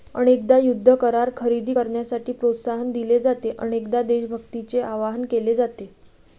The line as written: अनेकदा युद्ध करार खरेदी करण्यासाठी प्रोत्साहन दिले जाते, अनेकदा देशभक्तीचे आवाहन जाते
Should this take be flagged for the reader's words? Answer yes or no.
yes